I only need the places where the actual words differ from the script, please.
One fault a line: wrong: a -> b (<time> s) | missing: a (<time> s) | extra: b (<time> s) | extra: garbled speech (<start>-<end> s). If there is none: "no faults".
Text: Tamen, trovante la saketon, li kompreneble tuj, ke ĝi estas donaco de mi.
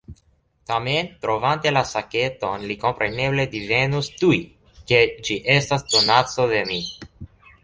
extra: divenus (3.6 s)